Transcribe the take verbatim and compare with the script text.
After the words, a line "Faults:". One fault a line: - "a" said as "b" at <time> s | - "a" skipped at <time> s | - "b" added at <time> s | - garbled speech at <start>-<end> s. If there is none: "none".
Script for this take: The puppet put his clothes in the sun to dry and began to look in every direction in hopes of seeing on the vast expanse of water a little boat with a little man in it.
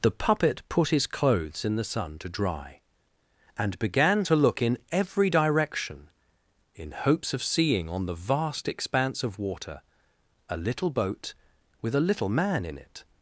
The puppet put his clothes in the sun to dry and began to look in every direction in hopes of seeing on the vast expanse of water a little boat with a little man in it.
Faults:
none